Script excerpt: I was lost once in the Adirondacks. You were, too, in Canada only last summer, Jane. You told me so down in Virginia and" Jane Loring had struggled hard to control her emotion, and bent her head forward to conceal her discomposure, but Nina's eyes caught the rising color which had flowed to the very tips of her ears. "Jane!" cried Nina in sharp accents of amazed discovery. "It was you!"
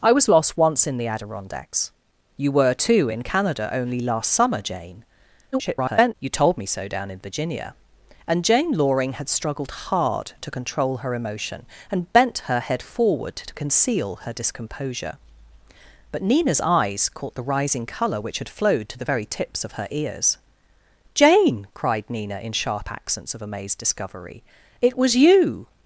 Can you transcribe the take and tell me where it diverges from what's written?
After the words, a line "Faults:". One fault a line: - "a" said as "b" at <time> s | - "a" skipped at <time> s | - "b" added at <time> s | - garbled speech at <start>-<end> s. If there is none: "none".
I was lost once in the Adirondacks. You were, too, in Canada only last summer, Jane. [garbled] You told me so down in Virginia and" Jane Loring had struggled hard to control her emotion, and bent her head forward to conceal her discomposure, but Nina's eyes caught the rising color which had flowed to the very tips of her ears. "Jane!" cried Nina in sharp accents of amazed discovery. "It was you!"
Faults:
- garbled speech at 5.5-6.1 s